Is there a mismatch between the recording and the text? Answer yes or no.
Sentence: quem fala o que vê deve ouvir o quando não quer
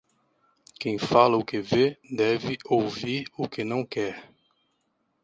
yes